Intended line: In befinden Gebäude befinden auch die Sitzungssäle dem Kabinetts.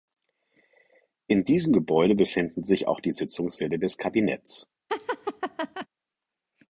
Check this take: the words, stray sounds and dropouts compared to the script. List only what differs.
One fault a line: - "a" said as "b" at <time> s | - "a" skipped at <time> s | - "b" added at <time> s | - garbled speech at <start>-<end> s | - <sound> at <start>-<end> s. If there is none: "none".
- "befinden" said as "diesem" at 1.4 s
- "sich" added at 2.6 s
- "dem" said as "des" at 3.8 s
- laugh at 4.9-5.9 s